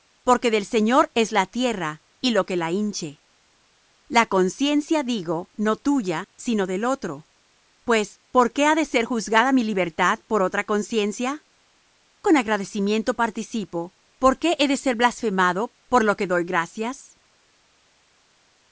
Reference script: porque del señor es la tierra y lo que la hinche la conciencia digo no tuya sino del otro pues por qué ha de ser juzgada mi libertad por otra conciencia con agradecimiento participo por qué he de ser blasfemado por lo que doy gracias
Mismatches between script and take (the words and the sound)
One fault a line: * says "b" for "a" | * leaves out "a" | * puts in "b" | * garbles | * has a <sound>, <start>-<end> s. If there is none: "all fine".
all fine